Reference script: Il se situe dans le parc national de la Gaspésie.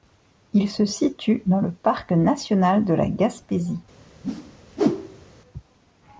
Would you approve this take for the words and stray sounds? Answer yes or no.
no